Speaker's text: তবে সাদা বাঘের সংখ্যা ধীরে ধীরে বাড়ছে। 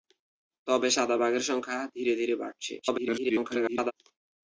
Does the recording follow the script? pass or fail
fail